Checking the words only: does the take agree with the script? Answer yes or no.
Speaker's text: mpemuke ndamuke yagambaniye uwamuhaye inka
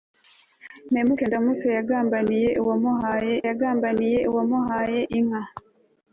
no